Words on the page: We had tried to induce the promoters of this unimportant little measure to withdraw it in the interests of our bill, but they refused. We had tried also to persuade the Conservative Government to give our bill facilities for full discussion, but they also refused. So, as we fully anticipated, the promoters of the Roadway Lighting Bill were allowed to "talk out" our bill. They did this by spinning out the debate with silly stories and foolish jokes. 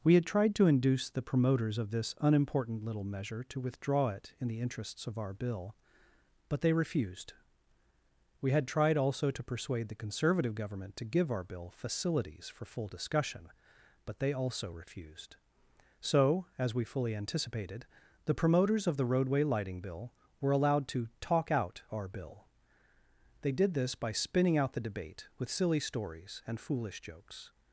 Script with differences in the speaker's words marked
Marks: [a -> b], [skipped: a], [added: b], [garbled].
We had tried to induce the promoters of this unimportant little measure to withdraw it in the interests of our bill, but they refused. We had tried also to persuade the Conservative Government to give our bill facilities for full discussion, but they also refused. So, as we fully anticipated, the promoters of the Roadway Lighting Bill were allowed to "talk out" our bill. They did this by spinning out the debate with silly stories and foolish jokes.